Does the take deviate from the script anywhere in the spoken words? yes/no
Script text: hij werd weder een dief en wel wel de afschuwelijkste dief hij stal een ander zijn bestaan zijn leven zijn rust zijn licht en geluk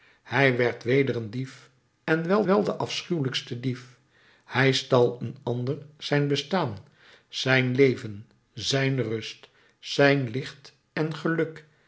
no